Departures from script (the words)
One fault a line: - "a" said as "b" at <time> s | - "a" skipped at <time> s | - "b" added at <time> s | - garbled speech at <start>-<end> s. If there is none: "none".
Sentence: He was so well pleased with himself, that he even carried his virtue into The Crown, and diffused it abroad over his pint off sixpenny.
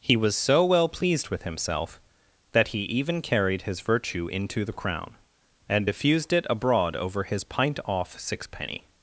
none